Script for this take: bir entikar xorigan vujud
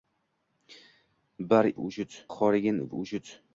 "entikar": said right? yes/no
no